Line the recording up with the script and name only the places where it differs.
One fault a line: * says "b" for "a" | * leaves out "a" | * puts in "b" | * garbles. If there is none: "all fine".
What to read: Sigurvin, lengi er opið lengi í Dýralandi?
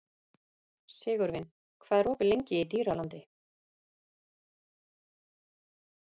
* says "hvað" for "lengi"